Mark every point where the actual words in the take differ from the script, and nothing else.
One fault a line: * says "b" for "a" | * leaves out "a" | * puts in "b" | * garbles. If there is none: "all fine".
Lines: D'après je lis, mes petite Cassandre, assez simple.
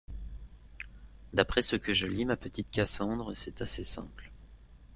* puts in "ce que"
* says "ma" for "mes"
* puts in "c'est"